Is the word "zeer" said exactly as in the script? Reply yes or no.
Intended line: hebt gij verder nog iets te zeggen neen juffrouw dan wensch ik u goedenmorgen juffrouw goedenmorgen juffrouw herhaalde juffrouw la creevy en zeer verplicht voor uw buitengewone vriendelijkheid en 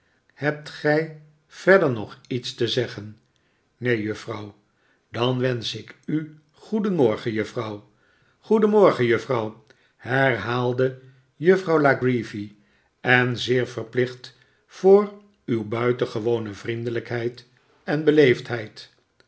yes